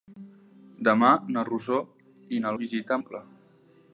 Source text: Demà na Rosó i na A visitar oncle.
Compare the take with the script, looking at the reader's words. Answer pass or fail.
pass